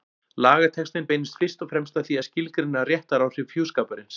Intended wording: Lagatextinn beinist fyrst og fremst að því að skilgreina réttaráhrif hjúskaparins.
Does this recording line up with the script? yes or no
yes